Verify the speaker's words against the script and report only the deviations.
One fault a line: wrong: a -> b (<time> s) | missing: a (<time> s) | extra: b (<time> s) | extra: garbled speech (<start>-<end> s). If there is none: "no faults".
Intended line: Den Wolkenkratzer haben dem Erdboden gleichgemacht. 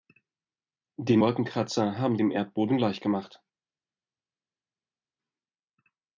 no faults